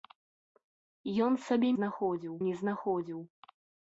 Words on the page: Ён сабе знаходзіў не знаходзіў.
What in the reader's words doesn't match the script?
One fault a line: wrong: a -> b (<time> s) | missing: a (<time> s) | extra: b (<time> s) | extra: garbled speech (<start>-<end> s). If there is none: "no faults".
no faults